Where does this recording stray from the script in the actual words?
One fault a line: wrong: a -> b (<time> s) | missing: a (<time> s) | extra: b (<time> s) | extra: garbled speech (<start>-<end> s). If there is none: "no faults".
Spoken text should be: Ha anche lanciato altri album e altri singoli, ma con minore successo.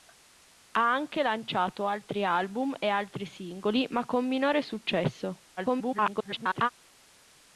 extra: garbled speech (5.6-6.7 s)